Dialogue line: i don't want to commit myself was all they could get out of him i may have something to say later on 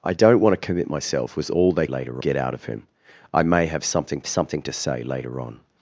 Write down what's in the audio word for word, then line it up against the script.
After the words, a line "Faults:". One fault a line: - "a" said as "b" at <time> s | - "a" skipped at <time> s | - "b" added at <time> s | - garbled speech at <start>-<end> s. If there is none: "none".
i don't want to commit myself was all they later get out of him i may have something something to say later on
Faults:
- "could" said as "later" at 1.9 s
- "something" added at 4.3 s